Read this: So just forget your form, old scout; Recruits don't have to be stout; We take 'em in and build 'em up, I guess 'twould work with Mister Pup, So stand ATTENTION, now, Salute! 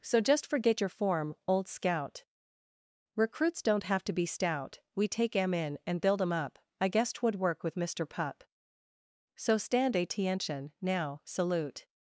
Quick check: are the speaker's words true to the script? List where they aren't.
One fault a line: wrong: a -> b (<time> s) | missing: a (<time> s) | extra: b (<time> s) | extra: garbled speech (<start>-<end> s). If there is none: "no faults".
no faults